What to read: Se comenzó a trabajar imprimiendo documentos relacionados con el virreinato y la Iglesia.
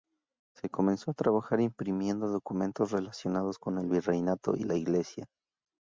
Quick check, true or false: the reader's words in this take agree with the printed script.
true